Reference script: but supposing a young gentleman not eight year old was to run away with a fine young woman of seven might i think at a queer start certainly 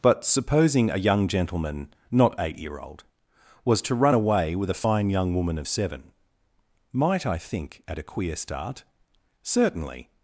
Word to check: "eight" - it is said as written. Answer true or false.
true